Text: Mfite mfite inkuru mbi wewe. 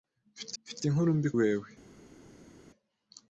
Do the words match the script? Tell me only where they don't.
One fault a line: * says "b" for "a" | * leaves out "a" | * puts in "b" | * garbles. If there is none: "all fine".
all fine